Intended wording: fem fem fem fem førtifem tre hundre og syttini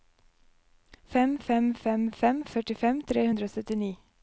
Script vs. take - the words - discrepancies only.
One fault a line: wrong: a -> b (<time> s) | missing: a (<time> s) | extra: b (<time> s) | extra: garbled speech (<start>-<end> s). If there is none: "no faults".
no faults